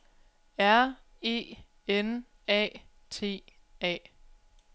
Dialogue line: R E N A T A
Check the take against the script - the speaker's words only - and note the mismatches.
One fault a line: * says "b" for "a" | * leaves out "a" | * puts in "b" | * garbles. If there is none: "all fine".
all fine